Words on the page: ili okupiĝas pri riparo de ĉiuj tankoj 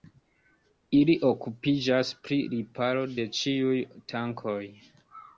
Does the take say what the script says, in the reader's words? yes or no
yes